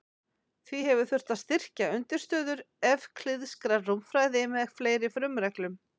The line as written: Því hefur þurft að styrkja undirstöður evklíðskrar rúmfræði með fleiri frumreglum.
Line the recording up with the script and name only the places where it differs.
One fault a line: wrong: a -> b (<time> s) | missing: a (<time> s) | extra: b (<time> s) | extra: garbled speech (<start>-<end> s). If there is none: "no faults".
no faults